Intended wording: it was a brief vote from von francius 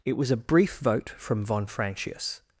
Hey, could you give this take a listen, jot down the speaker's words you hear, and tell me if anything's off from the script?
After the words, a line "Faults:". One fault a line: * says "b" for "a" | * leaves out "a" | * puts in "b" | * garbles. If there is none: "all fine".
it was a brief vote from von francius
Faults:
all fine